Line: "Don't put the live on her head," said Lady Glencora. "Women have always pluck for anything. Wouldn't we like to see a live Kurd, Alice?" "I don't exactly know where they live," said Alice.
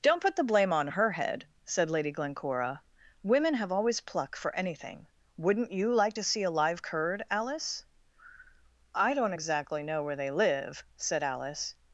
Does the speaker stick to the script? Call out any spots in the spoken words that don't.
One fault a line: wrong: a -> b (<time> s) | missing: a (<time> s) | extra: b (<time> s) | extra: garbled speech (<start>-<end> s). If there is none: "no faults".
wrong: live -> blame (0.4 s)
wrong: we -> you (5.7 s)